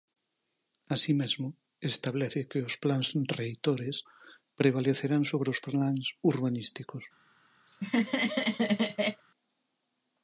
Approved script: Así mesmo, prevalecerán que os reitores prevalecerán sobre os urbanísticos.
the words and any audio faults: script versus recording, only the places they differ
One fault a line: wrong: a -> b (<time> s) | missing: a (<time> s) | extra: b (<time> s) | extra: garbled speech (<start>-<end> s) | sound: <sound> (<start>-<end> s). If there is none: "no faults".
wrong: prevalecerán -> establece (1.9 s)
extra: plans (2.8 s)
extra: plans (5.7 s)
sound: laugh (7.7-9.2 s)